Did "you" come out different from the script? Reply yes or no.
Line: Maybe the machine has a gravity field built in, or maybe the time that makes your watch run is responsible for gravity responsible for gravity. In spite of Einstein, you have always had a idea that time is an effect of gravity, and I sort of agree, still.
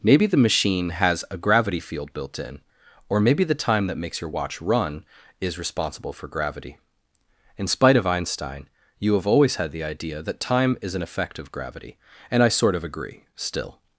no